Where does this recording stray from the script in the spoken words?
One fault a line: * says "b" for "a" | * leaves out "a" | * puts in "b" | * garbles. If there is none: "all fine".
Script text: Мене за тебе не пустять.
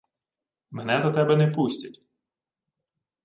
all fine